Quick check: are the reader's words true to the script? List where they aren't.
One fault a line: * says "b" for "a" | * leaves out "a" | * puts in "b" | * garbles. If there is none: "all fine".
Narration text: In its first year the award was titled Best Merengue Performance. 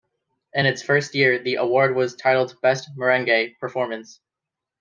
all fine